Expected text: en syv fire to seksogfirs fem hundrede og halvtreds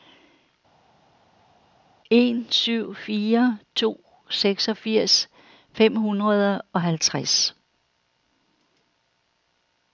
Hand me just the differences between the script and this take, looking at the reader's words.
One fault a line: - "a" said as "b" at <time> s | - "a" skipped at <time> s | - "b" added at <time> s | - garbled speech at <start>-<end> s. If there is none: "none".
none